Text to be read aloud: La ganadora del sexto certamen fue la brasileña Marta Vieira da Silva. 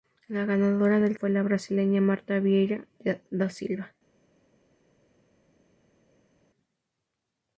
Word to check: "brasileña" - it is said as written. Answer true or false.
true